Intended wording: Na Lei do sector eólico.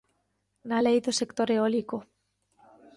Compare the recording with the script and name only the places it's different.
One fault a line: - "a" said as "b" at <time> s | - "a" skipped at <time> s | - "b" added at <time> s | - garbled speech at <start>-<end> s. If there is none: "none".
none